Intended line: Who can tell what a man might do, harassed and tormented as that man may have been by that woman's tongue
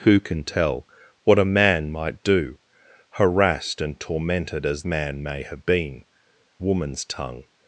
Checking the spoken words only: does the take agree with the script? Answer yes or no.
no